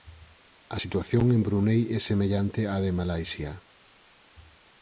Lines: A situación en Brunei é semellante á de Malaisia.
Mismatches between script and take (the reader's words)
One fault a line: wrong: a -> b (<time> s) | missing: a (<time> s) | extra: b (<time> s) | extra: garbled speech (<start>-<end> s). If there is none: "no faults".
no faults